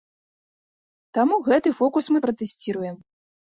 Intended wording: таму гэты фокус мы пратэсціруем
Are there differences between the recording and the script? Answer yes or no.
no